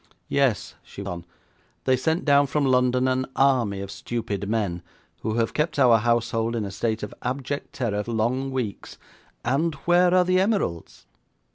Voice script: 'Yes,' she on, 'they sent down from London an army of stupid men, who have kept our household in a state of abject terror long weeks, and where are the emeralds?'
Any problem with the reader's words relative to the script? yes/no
no